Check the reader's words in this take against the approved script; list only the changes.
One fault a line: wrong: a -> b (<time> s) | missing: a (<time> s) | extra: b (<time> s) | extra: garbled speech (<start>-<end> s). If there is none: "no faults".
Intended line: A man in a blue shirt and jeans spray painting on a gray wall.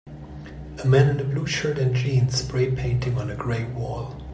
no faults